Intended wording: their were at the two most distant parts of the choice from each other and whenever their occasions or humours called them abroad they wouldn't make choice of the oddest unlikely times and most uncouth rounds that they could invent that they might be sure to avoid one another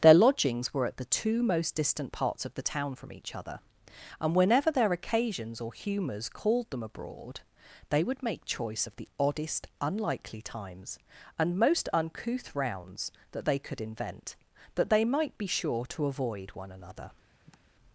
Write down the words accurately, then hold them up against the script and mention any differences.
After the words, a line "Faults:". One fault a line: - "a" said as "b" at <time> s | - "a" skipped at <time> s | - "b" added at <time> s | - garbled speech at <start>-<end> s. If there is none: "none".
their lodgings were at the two most distant parts of the town from each other and whenever their occasions or humours called them abroad they would make choice of the oddest unlikely times and most uncouth rounds that they could invent that they might be sure to avoid one another
Faults:
- "lodgings" added at 0.1 s
- "choice" said as "town" at 2.6 s
- "wouldn't" said as "would" at 8.0 s